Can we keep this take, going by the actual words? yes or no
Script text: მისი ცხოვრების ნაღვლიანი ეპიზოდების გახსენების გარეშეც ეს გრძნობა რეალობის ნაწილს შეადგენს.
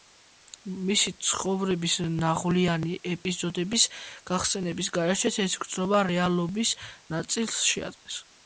yes